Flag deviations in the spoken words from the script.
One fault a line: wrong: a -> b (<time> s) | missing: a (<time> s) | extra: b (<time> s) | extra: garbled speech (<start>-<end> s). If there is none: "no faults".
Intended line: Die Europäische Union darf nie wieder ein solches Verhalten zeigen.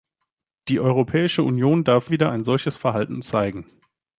missing: nie (2.1 s)